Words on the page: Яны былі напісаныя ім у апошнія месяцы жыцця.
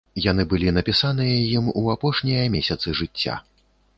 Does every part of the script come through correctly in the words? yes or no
yes